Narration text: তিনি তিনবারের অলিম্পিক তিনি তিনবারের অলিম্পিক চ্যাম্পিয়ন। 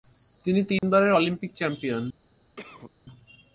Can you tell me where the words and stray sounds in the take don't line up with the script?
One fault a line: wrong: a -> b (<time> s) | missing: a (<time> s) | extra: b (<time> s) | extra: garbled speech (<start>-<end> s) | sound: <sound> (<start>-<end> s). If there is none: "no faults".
sound: dropout (0.8-0.8 s)
missing: তিনি তিনবারের অলিম্পিক (1.5 s)
sound: cough (2.6-2.9 s)